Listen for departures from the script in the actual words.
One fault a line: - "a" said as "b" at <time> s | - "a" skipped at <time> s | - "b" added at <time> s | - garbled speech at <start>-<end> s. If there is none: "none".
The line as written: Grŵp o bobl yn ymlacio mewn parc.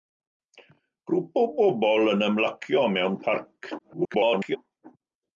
- garbled speech at 3.8-4.6 s